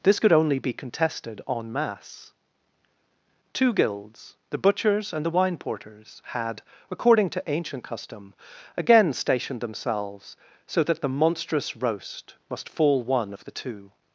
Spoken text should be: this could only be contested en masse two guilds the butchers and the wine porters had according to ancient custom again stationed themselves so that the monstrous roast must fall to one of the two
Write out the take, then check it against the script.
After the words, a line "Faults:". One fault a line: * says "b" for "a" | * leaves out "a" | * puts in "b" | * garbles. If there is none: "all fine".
this could only be contested en masse two guilds the butchers and the wine porters had according to ancient custom again stationed themselves so that the monstrous roast must fall one of the two
Faults:
* leaves out "to"